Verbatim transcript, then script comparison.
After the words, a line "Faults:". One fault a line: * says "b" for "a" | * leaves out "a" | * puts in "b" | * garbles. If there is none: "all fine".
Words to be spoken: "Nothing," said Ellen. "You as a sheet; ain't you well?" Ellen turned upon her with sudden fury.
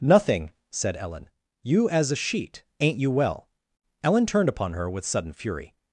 "Nothing," said Ellen. "You as a sheet; ain't you well?" Ellen turned upon her with sudden fury.
Faults:
all fine